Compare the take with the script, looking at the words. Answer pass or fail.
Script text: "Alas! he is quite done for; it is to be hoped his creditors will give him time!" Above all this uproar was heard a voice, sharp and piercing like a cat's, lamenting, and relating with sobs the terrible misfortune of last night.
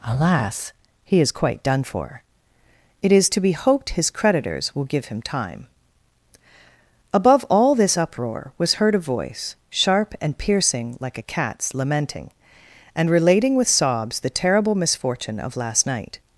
pass